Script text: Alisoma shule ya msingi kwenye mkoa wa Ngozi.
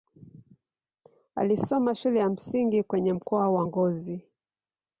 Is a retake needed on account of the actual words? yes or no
no